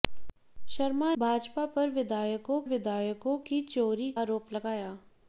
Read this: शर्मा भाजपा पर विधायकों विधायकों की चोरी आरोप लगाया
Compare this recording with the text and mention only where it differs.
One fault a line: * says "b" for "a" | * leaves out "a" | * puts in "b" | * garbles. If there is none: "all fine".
all fine